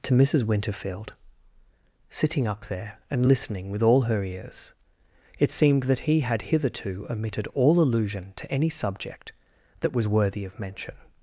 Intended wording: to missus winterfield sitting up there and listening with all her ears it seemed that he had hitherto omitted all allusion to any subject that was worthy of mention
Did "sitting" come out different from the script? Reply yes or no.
no